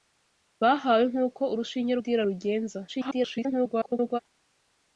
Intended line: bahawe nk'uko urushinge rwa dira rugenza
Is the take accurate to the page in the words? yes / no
no